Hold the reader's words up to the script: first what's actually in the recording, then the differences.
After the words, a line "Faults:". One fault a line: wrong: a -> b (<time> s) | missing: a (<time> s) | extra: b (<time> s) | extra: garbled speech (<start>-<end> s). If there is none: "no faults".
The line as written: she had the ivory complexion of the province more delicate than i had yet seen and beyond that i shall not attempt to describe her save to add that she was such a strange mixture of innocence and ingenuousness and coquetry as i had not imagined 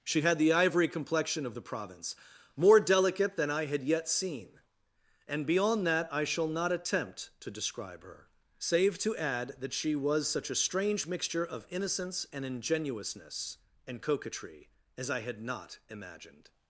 she had the ivory complexion of the province more delicate than i had yet seen and beyond that i shall not attempt to describe her save to add that she was such a strange mixture of innocence and ingenuousness and coquetry as i had not imagined
Faults:
no faults